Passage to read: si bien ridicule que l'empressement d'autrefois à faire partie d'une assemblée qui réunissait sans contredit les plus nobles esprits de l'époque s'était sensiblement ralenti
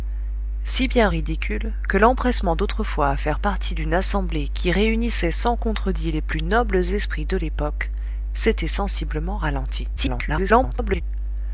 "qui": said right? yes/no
yes